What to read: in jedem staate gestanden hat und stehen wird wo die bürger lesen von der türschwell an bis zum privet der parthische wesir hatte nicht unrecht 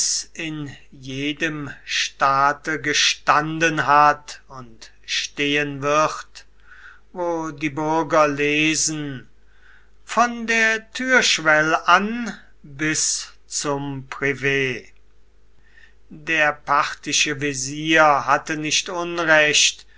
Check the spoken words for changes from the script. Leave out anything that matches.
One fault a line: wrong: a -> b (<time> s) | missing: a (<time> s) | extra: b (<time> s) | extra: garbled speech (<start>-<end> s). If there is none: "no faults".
no faults